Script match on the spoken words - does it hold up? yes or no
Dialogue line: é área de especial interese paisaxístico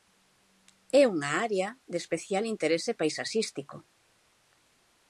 no